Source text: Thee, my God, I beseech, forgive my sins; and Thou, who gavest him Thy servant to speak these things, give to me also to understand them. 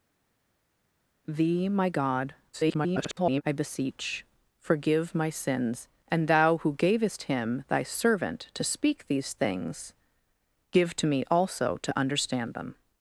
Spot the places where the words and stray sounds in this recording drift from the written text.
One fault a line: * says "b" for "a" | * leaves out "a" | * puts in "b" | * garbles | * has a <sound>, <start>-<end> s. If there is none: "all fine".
* garbles